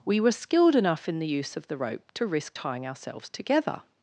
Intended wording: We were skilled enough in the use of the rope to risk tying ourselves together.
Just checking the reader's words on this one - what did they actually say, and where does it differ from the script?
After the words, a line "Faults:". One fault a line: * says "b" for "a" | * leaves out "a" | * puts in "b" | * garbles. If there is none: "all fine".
We were skilled enough in the use of the rope to risk tying ourselves together.
Faults:
all fine